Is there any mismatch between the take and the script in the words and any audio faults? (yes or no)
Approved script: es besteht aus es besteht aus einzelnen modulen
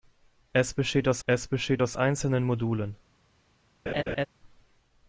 yes